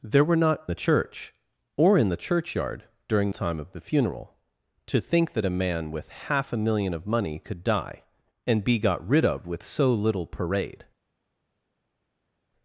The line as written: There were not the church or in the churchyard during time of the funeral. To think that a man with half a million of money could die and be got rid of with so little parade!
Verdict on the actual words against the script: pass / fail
pass